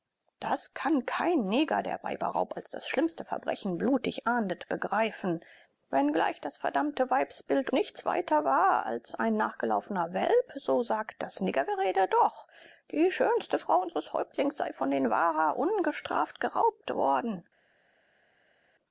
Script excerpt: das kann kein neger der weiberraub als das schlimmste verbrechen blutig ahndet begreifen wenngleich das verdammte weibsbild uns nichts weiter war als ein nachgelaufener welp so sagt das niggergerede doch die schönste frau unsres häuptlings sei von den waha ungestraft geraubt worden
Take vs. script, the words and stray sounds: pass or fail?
fail